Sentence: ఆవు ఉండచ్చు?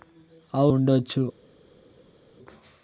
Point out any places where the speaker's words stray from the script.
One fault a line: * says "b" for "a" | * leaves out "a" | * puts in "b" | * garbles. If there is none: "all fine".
all fine